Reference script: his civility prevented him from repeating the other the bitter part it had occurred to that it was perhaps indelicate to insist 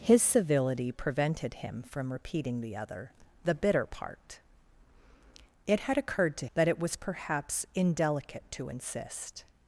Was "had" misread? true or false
false